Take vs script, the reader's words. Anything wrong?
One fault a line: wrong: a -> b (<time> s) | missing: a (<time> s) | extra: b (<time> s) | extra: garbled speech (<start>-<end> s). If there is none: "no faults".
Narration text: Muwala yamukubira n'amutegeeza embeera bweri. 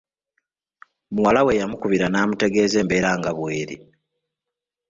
extra: we (1.4 s)
extra: nga (3.2 s)